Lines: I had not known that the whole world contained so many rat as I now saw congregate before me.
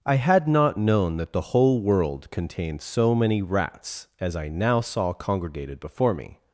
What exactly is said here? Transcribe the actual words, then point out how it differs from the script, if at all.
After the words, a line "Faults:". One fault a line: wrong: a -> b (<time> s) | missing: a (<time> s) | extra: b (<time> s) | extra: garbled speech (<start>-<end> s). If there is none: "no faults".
I had not known that the whole world contained so many rats as I now saw congregated before me.
Faults:
wrong: rat -> rats (3.4 s)
wrong: congregate -> congregated (5.1 s)